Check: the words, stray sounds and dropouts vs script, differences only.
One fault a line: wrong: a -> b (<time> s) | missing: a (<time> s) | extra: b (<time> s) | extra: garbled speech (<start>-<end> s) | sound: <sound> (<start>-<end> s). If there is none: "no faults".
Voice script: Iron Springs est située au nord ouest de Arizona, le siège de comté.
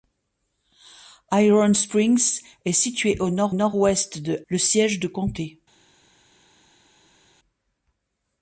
extra: nord (3.5 s)
missing: Arizona (4.4 s)